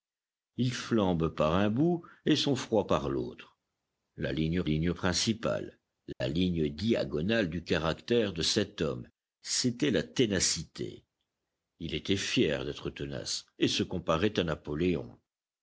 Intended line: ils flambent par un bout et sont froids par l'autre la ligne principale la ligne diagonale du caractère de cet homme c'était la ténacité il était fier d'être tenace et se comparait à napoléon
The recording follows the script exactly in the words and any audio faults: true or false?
false